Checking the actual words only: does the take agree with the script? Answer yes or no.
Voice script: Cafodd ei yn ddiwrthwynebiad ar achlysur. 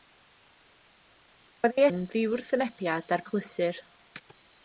yes